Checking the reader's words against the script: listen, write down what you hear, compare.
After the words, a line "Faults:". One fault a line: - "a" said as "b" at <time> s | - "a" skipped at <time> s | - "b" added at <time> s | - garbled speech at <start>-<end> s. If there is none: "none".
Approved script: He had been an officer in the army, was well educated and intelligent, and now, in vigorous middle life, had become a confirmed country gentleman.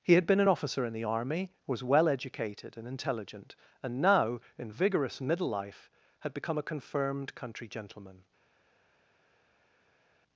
He had been an officer in the army, was well educated and intelligent, and now, in vigorous middle life, had become a confirmed country gentleman.
Faults:
none